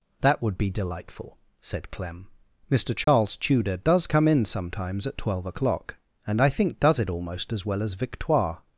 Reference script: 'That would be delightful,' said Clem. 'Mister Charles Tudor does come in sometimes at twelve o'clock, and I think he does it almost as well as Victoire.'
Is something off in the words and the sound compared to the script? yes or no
yes